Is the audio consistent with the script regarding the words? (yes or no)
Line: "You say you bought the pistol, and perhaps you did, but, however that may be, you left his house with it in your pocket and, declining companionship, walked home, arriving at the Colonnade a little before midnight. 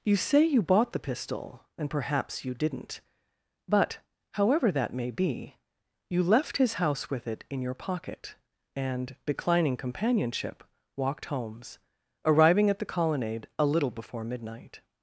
no